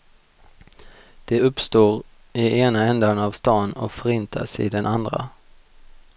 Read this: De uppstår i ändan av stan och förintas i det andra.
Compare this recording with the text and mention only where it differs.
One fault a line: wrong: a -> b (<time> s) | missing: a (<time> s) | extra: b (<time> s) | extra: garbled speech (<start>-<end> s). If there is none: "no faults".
extra: ena (2.6 s)
wrong: det -> den (4.7 s)